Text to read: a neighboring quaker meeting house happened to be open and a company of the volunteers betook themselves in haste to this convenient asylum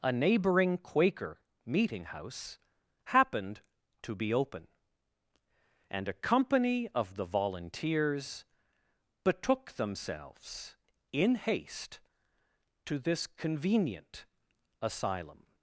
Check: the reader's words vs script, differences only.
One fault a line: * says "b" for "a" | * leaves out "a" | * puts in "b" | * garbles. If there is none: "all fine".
all fine